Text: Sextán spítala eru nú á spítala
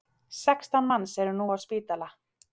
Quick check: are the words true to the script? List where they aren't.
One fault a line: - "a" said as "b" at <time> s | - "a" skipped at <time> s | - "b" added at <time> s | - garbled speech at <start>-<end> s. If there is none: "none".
- "spítala" said as "manns" at 0.9 s